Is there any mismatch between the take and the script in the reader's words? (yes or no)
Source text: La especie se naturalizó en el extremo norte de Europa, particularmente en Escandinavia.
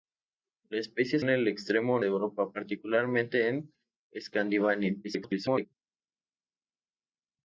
yes